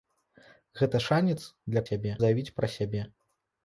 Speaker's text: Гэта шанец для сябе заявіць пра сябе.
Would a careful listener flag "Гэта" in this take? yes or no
no